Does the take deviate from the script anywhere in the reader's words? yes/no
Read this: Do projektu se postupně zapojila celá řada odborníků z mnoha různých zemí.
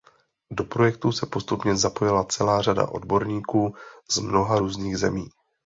no